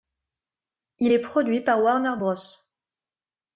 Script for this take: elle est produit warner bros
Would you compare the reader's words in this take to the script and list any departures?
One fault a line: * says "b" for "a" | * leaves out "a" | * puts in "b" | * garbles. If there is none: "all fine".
* says "il" for "elle"
* puts in "par"